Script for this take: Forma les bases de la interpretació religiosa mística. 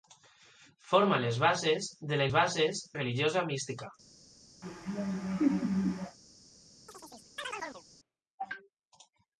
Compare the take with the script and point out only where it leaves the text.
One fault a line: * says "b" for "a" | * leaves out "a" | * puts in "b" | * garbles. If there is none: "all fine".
* says "bases" for "interpretació"